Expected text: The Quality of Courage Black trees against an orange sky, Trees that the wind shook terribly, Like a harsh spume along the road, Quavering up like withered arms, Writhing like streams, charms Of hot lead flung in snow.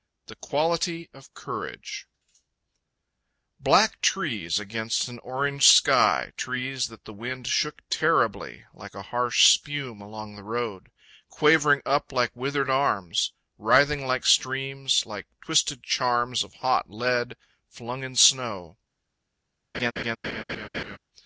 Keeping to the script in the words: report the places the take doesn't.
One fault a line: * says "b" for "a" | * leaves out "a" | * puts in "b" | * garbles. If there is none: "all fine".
* puts in "like twisted"